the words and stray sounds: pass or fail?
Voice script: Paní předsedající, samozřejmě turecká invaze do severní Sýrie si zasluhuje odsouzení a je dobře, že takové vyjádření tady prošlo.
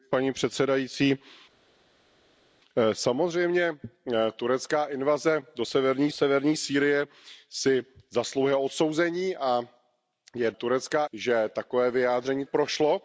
fail